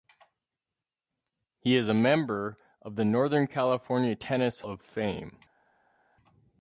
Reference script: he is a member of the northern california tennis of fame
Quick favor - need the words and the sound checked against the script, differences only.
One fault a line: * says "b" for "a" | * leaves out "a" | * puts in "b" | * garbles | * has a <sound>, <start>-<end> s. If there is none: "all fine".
all fine